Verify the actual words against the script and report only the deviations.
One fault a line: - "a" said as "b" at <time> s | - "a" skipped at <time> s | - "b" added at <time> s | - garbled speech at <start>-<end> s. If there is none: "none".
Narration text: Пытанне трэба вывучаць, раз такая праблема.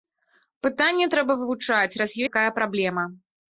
none